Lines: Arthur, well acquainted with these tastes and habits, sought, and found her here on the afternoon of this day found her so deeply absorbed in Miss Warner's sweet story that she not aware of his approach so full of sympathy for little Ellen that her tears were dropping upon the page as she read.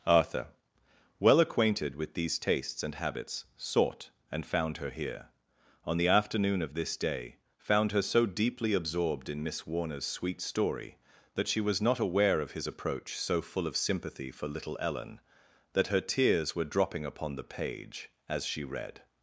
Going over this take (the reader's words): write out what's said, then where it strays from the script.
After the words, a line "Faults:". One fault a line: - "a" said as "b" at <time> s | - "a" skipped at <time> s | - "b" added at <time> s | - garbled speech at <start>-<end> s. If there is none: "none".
Arthur, well acquainted with these tastes and habits, sought, and found her here on the afternoon of this day found her so deeply absorbed in Miss Warner's sweet story that she was not aware of his approach so full of sympathy for little Ellen that her tears were dropping upon the page as she read.
Faults:
- "was" added at 11.6 s